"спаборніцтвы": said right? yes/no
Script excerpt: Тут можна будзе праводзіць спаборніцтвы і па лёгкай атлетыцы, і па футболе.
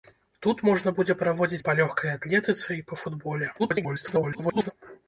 no